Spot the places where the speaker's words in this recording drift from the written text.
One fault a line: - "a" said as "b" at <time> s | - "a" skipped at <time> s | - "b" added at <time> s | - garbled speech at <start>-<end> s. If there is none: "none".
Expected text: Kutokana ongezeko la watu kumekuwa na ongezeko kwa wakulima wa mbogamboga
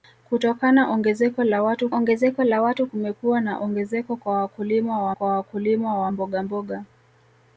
- "ongezeko la watu" added at 1.9 s
- "kwa wakulima wa" added at 5.1 s